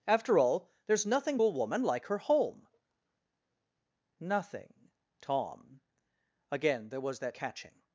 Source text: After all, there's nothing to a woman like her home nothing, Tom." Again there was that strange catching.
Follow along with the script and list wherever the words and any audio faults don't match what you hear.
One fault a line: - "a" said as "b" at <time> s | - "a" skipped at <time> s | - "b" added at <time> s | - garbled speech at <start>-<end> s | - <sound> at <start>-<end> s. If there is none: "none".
- "to" skipped at 1.4 s
- "strange" skipped at 7.4 s